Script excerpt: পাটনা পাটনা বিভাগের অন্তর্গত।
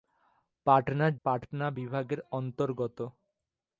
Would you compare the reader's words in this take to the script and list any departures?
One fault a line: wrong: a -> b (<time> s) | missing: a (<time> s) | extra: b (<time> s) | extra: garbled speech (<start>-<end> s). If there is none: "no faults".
no faults